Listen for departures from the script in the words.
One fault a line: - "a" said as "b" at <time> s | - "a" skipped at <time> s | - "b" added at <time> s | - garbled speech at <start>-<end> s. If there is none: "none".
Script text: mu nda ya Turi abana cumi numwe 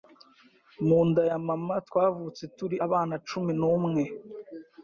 - "Mama twavutse" added at 1.5 s